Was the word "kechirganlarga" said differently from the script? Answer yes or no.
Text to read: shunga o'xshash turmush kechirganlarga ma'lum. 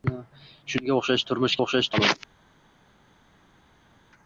yes